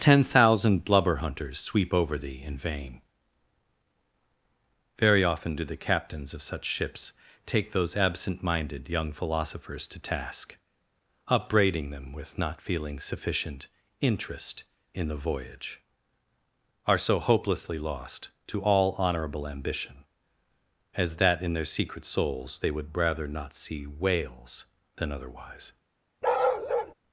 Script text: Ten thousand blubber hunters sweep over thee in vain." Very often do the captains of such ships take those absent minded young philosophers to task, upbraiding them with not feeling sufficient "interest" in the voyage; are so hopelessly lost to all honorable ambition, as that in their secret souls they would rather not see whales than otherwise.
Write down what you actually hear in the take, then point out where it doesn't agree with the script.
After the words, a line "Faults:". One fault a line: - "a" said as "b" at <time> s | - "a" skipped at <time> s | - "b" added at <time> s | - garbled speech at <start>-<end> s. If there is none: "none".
Ten thousand blubber hunters sweep over thee in vain." Very often do the captains of such ships take those absent minded young philosophers to task, upbraiding them with not feeling sufficient "interest" in the voyage; are so hopelessly lost to all honorable ambition, as that in their secret souls they would rather not see whales than otherwise.
Faults:
none